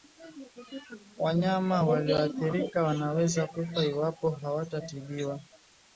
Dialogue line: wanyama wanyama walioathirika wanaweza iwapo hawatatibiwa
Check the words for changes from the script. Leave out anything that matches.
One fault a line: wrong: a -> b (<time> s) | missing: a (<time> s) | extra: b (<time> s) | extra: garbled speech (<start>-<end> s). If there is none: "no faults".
missing: wanyama (1.8 s)
extra: kufa (3.5 s)